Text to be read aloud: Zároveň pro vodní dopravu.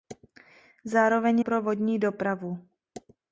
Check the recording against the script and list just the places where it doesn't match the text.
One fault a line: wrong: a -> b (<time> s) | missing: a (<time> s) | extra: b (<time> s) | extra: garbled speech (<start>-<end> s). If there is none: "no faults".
no faults